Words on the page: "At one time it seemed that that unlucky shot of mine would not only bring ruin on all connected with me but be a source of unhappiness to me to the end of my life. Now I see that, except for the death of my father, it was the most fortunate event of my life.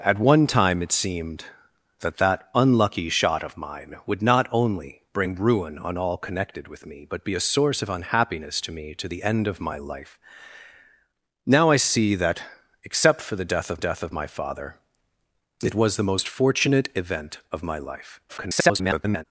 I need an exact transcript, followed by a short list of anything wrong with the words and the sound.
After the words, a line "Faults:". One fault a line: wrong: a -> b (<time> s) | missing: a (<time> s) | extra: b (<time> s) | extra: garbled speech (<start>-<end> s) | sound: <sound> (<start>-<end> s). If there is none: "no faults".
"At one time it seemed that that unlucky shot of mine would not only bring ruin on all connected with me but be a source of unhappiness to me to the end of my life. Now I see that, except for the death of death of my father, it was the most fortunate event of my life. [garbled]
Faults:
extra: death of (13.8 s)
extra: garbled speech (18.3-19.2 s)